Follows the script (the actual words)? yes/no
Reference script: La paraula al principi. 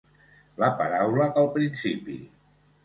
yes